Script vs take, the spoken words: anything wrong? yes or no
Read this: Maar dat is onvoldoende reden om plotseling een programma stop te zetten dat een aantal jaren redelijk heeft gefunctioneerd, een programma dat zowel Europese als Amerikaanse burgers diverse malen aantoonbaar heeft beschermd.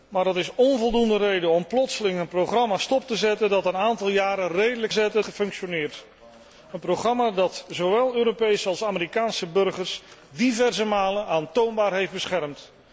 yes